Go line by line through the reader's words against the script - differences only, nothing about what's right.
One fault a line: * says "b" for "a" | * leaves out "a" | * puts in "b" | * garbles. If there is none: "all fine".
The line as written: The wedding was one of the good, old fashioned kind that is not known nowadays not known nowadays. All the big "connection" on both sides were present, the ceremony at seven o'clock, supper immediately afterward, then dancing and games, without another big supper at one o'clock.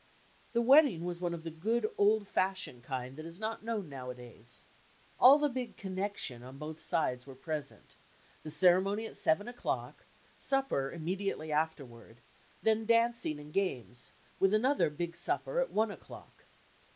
* leaves out "not known nowadays"
* says "with" for "without"